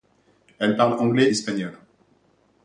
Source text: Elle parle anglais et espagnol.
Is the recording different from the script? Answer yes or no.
yes